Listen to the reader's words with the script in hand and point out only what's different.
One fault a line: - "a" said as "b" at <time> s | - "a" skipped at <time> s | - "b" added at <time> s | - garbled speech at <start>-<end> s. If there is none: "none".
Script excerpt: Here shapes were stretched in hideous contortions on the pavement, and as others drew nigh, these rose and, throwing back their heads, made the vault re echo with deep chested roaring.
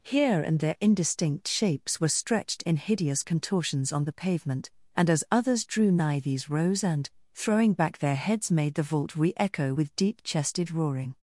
- "and there indistinct" added at 0.4 s